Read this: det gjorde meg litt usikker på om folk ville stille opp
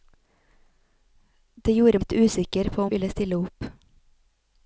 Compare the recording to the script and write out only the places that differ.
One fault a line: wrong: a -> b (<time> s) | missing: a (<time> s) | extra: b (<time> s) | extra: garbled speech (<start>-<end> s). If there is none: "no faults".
missing: meg (2.0 s)
missing: folk (2.9 s)